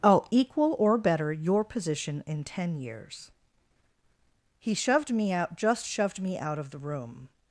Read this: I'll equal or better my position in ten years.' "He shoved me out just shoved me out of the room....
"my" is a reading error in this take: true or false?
true